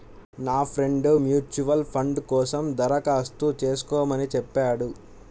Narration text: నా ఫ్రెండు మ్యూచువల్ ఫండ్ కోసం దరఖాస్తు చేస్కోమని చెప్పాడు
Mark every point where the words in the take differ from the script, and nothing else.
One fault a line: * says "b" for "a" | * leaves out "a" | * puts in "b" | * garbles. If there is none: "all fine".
all fine